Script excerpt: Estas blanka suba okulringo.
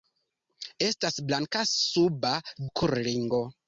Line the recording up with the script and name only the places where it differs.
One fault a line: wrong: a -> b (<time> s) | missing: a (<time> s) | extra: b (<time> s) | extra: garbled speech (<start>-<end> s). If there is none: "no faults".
no faults